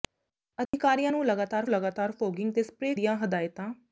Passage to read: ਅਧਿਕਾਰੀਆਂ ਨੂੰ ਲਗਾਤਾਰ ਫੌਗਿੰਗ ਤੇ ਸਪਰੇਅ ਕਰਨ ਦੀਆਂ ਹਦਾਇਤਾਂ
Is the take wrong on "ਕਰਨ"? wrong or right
wrong